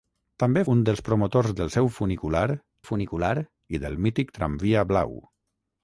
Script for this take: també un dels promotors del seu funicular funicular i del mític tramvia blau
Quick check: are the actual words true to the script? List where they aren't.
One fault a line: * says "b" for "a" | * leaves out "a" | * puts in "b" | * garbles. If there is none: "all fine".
all fine